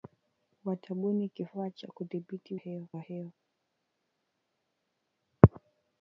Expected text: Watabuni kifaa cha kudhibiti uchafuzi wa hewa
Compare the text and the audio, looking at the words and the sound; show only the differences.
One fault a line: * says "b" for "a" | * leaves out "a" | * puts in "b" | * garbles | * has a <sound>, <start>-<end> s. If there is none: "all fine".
* says "hewa" for "uchafuzi"